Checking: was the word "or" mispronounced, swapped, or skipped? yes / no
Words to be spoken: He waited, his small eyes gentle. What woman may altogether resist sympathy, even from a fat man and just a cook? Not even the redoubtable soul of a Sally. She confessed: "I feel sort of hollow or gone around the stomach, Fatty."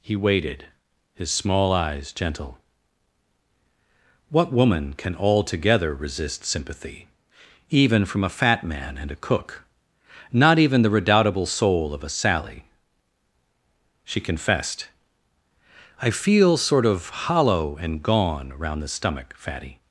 yes